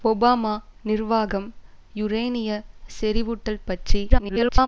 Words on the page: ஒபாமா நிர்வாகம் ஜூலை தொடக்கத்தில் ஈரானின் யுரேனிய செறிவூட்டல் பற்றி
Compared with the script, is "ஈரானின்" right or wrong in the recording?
wrong